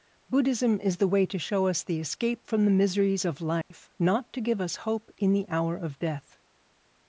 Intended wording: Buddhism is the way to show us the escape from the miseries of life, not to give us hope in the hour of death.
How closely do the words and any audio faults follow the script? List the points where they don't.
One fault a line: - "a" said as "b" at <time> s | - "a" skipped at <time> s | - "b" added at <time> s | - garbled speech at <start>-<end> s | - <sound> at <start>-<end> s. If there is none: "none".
- dropout at 3.6-3.7 s